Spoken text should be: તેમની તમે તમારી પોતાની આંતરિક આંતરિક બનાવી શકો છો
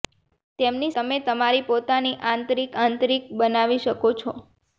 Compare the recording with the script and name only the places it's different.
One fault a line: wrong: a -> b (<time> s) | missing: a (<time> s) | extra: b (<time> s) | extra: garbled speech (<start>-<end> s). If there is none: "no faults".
no faults